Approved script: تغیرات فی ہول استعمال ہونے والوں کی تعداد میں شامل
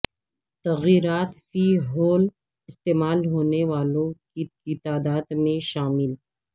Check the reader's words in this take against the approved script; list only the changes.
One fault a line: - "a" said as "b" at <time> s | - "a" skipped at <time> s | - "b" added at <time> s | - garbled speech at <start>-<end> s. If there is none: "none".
- "کی" added at 4.5 s